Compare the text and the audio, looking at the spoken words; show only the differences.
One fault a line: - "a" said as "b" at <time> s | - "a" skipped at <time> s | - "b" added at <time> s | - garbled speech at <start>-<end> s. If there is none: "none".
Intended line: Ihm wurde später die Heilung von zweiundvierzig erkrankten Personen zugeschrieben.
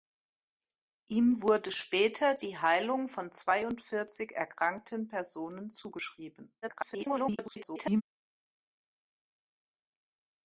- garbled speech at 6.6-8.0 s